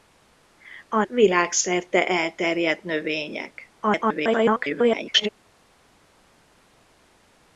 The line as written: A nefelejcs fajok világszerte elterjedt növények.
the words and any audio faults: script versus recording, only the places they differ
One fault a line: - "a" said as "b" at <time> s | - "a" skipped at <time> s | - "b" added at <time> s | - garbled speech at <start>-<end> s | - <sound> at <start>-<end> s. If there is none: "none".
- "nefelejcs fajok" skipped at 1.0 s
- garbled speech at 3.8-5.3 s